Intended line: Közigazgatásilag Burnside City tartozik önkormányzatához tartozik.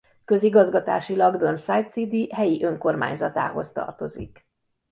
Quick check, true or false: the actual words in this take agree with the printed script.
false